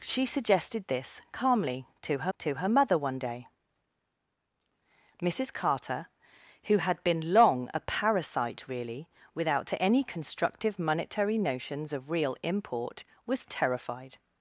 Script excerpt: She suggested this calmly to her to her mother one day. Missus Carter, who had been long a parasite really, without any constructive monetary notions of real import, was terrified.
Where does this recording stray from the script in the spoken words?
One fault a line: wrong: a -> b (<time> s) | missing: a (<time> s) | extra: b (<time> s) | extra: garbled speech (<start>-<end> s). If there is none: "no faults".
no faults